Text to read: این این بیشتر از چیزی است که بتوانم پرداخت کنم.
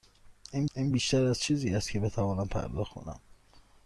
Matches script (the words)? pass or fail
pass